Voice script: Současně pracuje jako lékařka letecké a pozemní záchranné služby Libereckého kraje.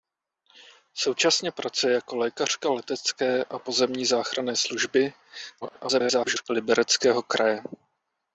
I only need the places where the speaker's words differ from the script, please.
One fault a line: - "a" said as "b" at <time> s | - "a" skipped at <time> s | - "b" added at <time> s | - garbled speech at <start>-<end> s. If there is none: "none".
- garbled speech at 5.6-6.4 s